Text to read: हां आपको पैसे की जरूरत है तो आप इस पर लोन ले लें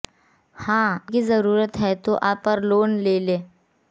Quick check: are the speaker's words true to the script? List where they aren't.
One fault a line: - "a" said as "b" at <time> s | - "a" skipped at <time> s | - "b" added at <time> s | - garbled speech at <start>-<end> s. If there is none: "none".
- "आपको पैसे" skipped at 0.9 s
- "इस" skipped at 2.4 s